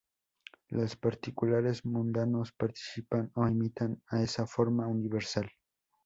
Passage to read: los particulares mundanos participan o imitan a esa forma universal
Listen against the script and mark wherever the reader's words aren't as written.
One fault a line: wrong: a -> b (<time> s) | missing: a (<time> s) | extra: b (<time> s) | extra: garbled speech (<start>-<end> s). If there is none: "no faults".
no faults